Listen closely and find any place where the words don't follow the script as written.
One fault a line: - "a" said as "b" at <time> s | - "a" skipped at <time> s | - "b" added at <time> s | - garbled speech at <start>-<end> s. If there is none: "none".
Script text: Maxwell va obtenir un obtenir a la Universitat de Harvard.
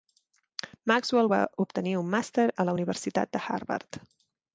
- "obtenir" said as "màster" at 2.1 s